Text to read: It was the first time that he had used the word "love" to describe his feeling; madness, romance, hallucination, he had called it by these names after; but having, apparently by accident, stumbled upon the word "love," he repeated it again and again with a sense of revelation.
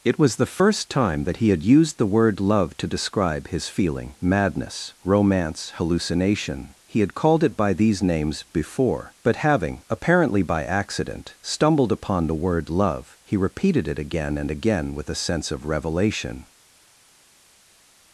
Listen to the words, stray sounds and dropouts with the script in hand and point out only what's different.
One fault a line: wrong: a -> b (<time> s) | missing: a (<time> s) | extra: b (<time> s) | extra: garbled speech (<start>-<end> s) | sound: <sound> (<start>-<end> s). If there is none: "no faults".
wrong: after -> before (8.5 s)